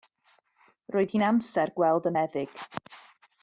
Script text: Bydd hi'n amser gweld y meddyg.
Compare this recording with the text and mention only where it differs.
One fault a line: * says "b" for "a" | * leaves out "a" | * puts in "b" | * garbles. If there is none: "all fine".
* says "Roedd" for "Bydd"